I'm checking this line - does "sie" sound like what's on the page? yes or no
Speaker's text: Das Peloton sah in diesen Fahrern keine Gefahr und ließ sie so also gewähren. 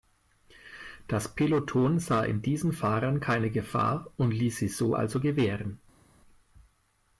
yes